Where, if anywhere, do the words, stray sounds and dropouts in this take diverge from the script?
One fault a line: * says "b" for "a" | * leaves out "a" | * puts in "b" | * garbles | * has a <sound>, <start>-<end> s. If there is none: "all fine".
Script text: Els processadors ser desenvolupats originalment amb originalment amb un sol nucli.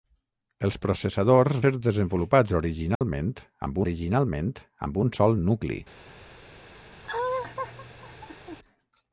* has a dropout, 3.0-3.0 s
* has a laugh, 7.0-8.6 s